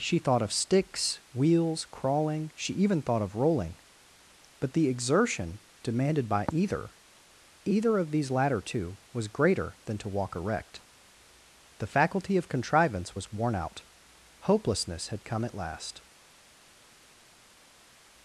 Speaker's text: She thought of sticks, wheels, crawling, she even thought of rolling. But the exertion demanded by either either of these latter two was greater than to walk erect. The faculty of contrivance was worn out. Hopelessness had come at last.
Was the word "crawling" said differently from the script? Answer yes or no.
no